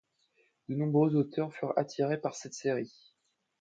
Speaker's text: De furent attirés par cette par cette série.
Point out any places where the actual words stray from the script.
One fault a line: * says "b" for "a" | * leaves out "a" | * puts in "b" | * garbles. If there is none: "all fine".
* puts in "nombreux auteurs"
* leaves out "par cette"